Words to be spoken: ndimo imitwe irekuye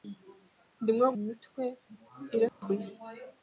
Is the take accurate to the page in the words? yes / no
yes